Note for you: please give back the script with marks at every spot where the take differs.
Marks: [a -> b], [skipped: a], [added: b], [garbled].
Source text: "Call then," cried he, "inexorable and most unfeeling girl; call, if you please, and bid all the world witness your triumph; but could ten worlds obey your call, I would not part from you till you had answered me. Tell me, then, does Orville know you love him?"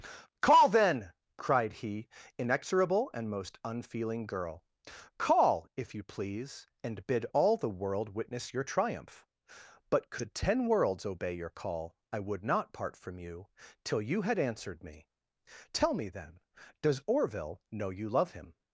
"Call then," cried he, "inexorable and most unfeeling girl; call, if you please, and bid all the world witness your triumph; but could ten worlds obey your call, I would not part from you till you had answered me. Tell me, then, does Orville know you love him?"